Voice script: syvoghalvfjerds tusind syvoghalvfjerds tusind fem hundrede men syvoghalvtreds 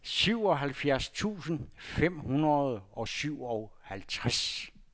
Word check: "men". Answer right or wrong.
wrong